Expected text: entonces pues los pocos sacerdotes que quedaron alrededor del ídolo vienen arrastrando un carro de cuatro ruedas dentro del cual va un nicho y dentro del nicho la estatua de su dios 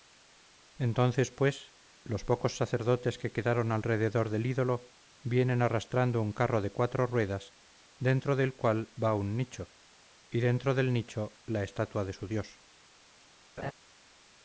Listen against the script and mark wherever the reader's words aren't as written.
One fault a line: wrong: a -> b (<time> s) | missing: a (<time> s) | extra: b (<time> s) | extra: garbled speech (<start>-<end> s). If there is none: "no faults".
no faults